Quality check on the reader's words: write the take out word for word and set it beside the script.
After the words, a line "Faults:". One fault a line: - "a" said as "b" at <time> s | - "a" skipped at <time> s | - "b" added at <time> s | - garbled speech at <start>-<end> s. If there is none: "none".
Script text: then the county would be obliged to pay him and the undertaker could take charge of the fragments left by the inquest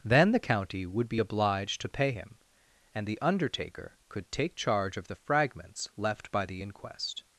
then the county would be obliged to pay him and the undertaker could take charge of the fragments left by the inquest
Faults:
none